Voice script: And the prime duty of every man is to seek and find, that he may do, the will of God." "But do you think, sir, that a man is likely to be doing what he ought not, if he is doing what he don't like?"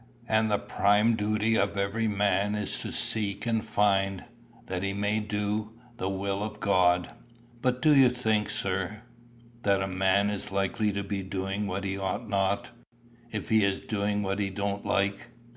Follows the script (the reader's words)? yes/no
yes